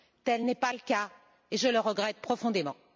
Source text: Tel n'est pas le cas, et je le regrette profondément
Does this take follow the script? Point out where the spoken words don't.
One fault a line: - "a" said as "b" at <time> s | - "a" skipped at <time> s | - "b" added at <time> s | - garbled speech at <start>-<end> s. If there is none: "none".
none